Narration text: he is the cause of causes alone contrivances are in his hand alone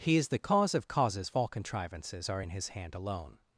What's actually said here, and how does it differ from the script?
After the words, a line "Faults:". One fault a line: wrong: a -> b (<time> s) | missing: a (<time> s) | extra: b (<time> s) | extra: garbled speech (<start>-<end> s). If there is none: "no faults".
he is the cause of causes all contrivances are in his hand alone
Faults:
wrong: alone -> all (1.3 s)